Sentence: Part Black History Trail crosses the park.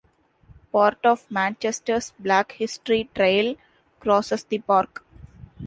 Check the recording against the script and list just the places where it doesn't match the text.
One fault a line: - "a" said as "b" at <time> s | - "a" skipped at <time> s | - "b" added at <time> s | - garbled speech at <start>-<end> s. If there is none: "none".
- "of Manchester's" added at 1.1 s